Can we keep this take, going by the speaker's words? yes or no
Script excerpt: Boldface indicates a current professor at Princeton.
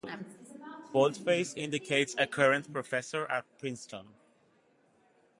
yes